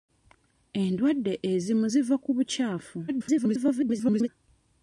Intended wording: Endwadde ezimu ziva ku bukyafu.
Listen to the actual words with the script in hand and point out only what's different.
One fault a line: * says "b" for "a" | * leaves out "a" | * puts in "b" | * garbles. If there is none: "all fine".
* garbles